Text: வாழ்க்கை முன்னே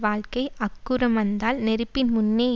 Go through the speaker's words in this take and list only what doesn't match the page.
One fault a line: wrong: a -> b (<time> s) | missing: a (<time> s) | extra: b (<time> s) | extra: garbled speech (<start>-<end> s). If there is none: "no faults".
extra: அக்குறம் வந்தால் நெருப்பின் (0.6 s)